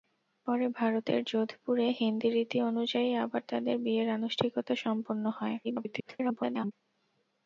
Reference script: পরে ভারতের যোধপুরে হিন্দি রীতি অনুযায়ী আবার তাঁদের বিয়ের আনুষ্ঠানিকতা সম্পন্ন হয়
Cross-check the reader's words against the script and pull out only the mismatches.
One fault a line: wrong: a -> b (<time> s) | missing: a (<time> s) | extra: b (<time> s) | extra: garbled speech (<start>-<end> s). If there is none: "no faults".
extra: garbled speech (5.6-6.7 s)